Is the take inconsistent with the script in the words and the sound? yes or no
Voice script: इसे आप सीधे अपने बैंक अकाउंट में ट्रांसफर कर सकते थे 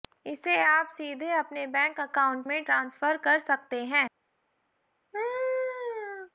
yes